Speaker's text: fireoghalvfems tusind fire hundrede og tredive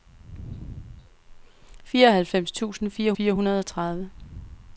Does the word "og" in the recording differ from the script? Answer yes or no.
no